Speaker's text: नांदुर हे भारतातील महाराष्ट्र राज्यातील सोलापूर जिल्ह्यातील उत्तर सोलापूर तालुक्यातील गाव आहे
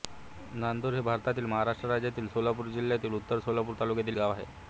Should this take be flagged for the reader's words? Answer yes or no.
no